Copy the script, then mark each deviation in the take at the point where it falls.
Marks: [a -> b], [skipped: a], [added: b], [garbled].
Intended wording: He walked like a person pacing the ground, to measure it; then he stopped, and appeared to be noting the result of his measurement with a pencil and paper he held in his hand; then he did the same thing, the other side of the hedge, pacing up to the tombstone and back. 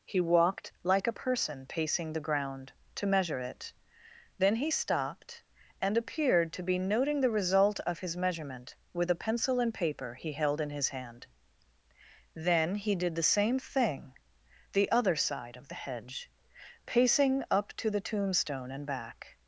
He walked like a person pacing the ground, to measure it; then he stopped, and appeared to be noting the result of his measurement with a pencil and paper he held in his hand; then he did the same thing, the other side of the hedge, pacing up to the tombstone and back.